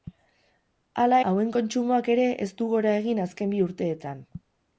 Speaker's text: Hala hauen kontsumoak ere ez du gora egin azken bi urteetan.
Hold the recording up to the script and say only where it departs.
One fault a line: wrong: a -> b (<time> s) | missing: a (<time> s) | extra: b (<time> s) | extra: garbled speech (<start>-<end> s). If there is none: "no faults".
no faults